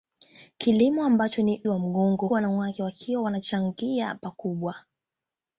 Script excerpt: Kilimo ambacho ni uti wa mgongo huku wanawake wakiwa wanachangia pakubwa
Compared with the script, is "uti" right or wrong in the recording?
wrong